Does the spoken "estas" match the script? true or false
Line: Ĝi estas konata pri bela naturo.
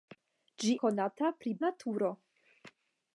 false